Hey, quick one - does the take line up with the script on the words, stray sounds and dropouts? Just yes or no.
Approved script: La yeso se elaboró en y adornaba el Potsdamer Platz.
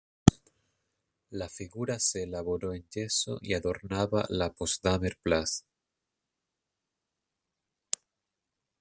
no